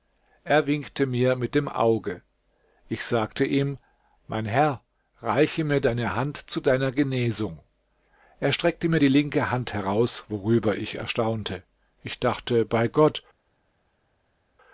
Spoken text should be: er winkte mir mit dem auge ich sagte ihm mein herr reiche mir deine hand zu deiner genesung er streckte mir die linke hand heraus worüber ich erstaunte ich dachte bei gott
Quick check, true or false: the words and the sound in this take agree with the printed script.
true